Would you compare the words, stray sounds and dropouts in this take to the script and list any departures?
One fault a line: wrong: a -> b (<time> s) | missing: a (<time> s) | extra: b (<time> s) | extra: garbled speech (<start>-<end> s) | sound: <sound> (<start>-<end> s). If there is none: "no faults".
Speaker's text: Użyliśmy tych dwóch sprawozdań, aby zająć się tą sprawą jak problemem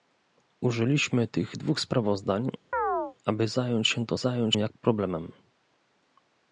sound: chirp (2.7-3.2 s)
wrong: sprawą -> zająć (4.2 s)